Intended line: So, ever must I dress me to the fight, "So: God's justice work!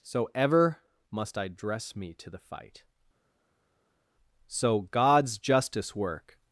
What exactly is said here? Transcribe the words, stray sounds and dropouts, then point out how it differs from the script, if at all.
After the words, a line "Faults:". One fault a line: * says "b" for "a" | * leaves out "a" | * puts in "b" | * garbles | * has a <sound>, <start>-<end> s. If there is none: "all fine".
So, ever must I dress me to the fight, "So: God's justice work!
Faults:
all fine